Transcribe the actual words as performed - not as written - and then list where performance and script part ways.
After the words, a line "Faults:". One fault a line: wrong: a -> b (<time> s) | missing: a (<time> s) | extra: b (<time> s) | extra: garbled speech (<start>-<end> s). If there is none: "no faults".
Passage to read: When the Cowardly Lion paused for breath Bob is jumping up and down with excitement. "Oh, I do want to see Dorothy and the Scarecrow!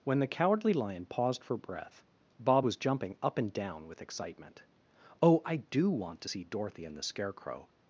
When the Cowardly Lion paused for breath Bob was jumping up and down with excitement. "Oh, I do want to see Dorothy and the Scarecrow!
Faults:
wrong: is -> was (2.6 s)